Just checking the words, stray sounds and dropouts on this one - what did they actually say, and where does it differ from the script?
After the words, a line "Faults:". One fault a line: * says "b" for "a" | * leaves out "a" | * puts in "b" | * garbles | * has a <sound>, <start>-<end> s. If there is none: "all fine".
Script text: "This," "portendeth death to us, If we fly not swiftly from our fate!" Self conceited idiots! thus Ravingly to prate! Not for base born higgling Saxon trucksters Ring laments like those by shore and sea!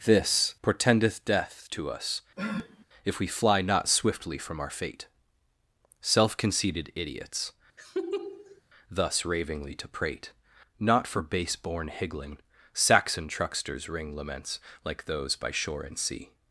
"This," "portendeth death to us, If we fly not swiftly from our fate!" Self conceited idiots! thus Ravingly to prate! Not for base born higgling Saxon trucksters Ring laments like those by shore and sea!
Faults:
* has a sniff, 2.4-2.9 s
* has a laugh, 7.8-8.6 s